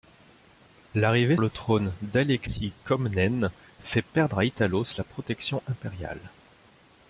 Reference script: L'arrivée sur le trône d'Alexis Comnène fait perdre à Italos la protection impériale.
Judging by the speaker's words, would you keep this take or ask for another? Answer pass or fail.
fail